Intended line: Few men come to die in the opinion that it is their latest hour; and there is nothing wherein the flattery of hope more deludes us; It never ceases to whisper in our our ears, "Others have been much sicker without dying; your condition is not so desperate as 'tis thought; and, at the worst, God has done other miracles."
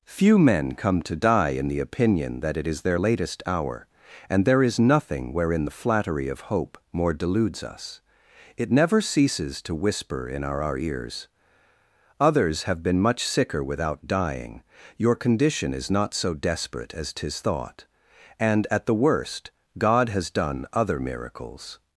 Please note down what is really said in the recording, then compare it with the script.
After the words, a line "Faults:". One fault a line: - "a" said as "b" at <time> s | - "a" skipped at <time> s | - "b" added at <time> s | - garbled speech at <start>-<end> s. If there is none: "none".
Few men come to die in the opinion that it is their latest hour; and there is nothing wherein the flattery of hope more deludes us; It never ceases to whisper in our our ears, "Others have been much sicker without dying; your condition is not so desperate as 'tis thought; and, at the worst, God has done other miracles."
Faults:
none